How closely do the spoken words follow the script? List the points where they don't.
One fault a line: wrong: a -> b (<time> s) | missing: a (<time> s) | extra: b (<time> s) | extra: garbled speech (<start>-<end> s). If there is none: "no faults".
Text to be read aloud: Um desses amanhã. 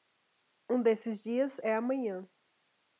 extra: dias é (1.2 s)